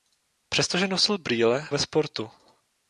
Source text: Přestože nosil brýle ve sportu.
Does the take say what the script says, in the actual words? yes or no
yes